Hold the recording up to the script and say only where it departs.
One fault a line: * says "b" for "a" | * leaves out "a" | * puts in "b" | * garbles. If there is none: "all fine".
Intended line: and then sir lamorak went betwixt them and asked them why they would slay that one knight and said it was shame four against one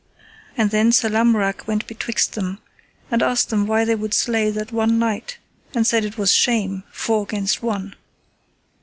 all fine